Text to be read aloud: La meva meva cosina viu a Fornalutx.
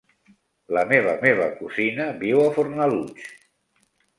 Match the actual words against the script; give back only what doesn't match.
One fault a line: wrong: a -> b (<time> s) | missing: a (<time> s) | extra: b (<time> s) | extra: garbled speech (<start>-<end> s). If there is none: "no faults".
no faults